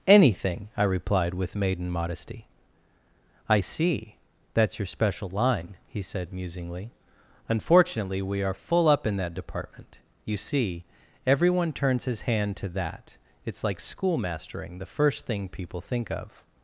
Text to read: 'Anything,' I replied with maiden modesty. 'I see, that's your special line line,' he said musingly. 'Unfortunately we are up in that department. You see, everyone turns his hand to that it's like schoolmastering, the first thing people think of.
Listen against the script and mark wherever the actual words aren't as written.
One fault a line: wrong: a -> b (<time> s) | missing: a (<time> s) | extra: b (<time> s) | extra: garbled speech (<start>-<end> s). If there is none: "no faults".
missing: line (5.8 s)
extra: full (8.5 s)